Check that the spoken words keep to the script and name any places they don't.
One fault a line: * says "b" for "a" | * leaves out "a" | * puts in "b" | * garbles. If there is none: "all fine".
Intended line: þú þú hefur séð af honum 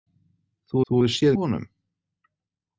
all fine